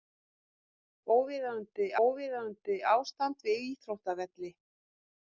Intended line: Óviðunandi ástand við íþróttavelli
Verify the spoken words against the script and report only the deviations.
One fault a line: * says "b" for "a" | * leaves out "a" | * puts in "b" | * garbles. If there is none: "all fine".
* puts in "óviðunandi"